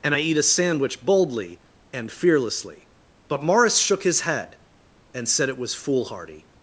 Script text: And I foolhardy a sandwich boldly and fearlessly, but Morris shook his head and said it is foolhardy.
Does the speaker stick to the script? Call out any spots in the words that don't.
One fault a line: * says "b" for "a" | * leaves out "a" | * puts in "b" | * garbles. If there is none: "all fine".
* says "eat" for "foolhardy"
* says "was" for "is"